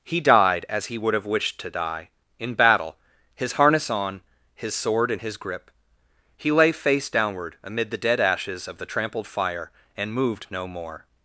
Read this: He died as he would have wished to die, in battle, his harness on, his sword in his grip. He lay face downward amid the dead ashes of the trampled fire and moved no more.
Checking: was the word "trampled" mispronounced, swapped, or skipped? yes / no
no